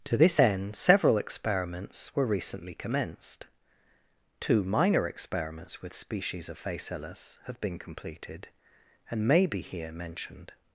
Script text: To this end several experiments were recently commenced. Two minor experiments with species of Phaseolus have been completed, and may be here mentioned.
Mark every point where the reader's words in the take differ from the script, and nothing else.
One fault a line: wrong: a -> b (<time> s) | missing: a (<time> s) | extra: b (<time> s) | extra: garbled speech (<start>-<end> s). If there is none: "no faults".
no faults